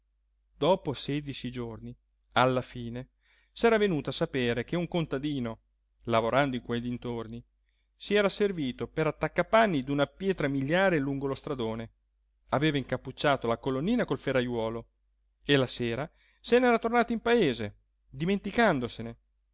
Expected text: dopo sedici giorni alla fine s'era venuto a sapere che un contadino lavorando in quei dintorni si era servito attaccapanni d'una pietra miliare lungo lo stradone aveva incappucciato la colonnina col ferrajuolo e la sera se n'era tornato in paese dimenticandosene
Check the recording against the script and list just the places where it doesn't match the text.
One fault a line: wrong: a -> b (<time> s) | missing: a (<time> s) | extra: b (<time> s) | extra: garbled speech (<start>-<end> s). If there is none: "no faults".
extra: per (8.9 s)